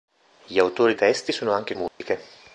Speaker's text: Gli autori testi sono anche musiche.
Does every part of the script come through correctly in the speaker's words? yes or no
yes